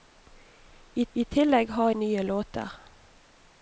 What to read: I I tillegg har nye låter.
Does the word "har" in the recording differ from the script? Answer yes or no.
no